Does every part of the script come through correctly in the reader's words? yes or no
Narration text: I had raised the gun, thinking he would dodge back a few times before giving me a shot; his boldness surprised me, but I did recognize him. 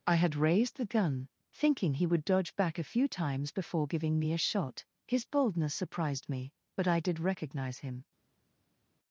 yes